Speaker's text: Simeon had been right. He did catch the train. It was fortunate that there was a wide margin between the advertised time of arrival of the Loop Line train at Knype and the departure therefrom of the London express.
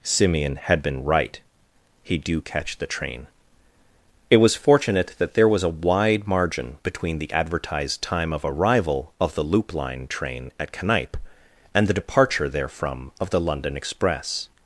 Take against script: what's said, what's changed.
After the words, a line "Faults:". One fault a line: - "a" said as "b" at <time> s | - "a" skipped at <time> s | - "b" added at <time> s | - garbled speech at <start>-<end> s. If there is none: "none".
Simeon had been right. He do catch the train. It was fortunate that there was a wide margin between the advertised time of arrival of the Loop Line train at Knype and the departure therefrom of the London express.
Faults:
- "did" said as "do" at 2.2 s